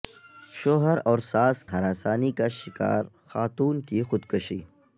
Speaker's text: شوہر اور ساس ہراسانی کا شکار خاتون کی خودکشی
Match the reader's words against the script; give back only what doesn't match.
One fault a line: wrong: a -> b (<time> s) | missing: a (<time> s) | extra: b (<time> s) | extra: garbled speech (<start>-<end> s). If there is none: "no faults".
no faults